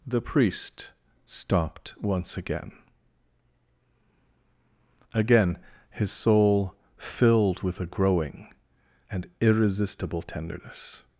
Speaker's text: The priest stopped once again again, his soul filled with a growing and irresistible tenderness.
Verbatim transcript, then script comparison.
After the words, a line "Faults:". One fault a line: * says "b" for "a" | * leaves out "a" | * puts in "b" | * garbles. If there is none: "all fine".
The priest stopped once again again, his soul filled with a growing and irresistible tenderness.
Faults:
all fine